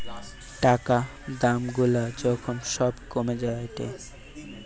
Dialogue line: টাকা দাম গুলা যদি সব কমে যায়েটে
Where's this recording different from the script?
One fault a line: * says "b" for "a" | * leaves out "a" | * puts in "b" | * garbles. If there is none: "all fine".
* says "যখন" for "যদি"